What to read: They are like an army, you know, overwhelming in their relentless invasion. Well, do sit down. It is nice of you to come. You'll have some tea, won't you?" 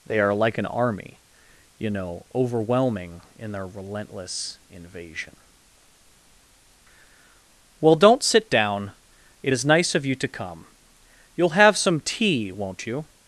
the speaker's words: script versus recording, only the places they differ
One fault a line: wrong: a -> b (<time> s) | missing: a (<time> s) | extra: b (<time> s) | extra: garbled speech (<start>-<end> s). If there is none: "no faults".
wrong: do -> don't (8.0 s)